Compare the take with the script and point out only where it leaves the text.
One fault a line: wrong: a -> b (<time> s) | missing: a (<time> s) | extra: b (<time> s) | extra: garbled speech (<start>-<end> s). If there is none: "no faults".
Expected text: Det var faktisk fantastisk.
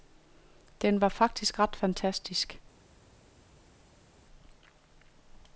wrong: Det -> Den (0.8 s)
extra: ret (1.6 s)